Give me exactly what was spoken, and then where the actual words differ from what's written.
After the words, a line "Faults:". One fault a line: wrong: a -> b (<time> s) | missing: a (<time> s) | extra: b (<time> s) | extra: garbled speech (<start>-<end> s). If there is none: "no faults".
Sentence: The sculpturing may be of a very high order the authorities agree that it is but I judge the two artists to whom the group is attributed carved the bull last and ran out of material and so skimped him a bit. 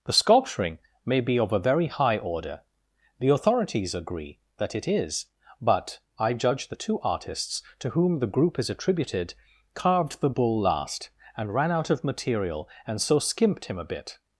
The sculpturing may be of a very high order the authorities agree that it is but I judge the two artists to whom the group is attributed carved the bull last and ran out of material and so skimped him a bit.
Faults:
no faults